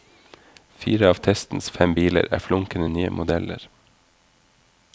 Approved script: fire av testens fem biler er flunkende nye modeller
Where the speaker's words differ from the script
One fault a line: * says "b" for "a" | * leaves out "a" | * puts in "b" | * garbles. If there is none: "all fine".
all fine